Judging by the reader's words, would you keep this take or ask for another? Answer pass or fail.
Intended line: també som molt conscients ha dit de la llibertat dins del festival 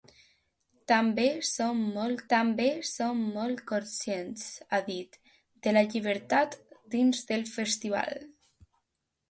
fail